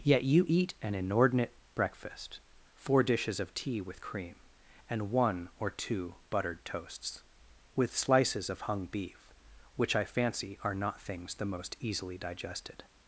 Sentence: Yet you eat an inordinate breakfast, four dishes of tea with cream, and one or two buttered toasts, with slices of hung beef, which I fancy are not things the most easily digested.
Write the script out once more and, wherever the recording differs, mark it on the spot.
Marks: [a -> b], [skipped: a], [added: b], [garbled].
Yet you eat an inordinate breakfast, four dishes of tea with cream, and one or two buttered toasts, with slices of hung beef, which I fancy are not things the most easily digested.